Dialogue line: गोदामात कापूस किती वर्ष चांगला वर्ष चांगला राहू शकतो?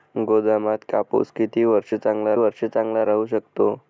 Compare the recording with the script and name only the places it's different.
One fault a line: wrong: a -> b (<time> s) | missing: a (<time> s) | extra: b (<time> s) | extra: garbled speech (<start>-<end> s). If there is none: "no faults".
no faults